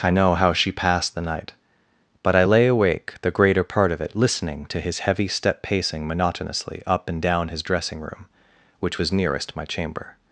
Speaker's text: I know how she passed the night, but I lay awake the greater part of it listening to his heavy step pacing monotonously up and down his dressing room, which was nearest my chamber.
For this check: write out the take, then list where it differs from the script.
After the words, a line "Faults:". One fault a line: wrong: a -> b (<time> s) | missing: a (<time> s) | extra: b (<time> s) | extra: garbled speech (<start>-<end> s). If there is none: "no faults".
I know how she passed the night, but I lay awake the greater part of it listening to his heavy step pacing monotonously up and down his dressing room, which was nearest my chamber.
Faults:
no faults